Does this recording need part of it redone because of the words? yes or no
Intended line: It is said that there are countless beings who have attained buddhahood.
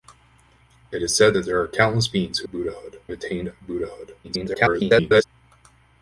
yes